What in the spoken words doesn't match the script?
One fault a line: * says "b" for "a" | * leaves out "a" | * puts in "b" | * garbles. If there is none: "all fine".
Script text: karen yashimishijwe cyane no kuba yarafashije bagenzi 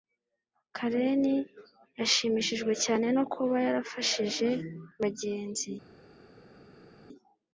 all fine